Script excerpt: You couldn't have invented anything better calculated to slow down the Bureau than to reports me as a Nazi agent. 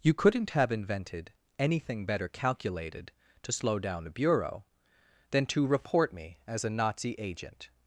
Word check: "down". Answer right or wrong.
right